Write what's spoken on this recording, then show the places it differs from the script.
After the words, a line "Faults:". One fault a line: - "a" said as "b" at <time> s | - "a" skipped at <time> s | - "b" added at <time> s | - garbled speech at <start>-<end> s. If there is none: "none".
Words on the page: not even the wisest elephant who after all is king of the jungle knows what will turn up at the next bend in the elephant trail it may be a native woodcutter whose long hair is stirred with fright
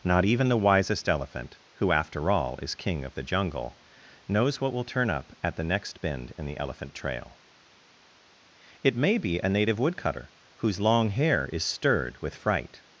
not even the wisest elephant who after all is king of the jungle knows what will turn up at the next bend in the elephant trail it may be a native woodcutter whose long hair is stirred with fright
Faults:
none